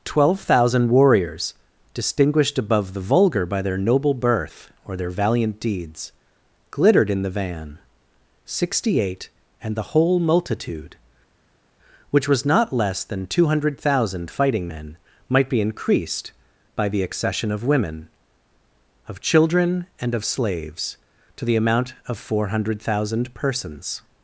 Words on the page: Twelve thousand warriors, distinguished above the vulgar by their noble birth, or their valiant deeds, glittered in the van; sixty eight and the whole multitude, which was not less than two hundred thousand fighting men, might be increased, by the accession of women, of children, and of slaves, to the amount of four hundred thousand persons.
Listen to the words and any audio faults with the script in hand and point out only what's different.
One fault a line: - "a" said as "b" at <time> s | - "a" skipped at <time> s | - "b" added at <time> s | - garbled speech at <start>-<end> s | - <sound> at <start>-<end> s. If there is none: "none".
none